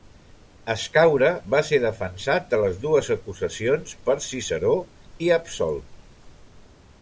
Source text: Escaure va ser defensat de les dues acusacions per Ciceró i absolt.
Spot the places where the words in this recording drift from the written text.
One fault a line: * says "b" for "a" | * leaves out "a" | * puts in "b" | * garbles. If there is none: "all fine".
all fine